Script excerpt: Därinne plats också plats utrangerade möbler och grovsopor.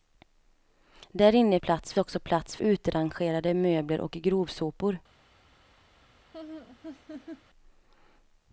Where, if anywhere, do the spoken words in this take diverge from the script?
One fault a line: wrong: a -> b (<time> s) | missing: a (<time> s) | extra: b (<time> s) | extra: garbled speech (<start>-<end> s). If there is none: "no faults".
no faults